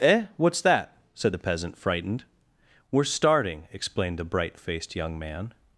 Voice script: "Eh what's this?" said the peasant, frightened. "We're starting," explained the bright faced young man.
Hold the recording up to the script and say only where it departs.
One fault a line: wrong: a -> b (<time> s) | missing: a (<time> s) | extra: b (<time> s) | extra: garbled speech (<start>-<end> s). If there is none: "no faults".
wrong: this -> that (0.6 s)